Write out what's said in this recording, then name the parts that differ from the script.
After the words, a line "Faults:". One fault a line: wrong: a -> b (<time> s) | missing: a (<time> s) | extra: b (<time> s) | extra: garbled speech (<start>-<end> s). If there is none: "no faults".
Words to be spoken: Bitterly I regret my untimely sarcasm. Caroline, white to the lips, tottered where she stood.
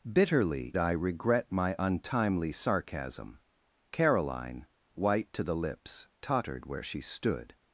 Bitterly I regret my untimely sarcasm. Caroline, white to the lips, tottered where she stood.
Faults:
no faults